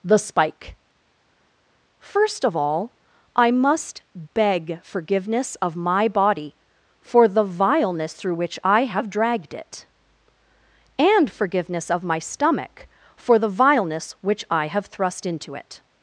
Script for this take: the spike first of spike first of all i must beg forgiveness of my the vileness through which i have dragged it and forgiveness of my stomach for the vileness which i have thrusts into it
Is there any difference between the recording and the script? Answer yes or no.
yes